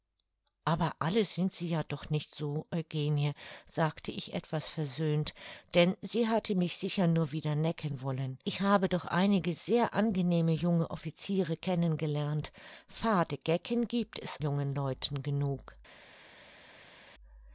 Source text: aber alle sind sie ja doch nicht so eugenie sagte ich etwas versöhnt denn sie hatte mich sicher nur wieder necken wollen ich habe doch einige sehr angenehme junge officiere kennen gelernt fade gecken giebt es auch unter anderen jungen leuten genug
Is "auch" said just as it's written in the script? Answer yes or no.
no